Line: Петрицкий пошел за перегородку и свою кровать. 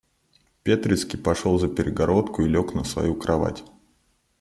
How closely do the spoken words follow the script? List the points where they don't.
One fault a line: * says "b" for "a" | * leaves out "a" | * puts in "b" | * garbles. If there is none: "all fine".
* puts in "лег на"